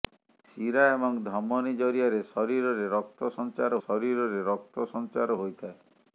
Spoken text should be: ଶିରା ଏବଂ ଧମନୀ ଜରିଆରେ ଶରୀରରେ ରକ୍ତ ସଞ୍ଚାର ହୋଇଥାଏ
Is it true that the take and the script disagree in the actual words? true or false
true